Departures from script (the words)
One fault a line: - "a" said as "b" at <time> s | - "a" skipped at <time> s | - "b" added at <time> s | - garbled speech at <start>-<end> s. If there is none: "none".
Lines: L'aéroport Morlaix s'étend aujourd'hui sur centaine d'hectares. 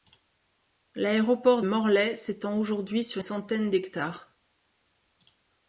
none